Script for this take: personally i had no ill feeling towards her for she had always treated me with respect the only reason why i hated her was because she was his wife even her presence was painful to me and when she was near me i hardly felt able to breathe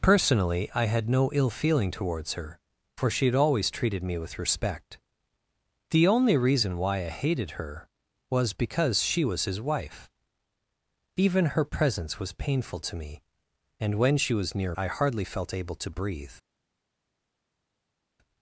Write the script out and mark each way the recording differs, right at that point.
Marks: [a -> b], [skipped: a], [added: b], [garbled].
personally i had no ill feeling towards her for she had always treated me with respect the only reason why i hated her was because she was his wife even her presence was painful to me and when she was near [skipped: me] i hardly felt able to breathe